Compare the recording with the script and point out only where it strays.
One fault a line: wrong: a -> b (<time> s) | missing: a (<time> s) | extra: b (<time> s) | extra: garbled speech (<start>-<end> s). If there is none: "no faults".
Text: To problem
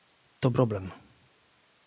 no faults